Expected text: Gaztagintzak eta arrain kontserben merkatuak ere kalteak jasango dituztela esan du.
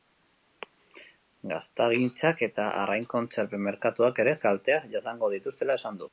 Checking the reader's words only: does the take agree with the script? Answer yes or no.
yes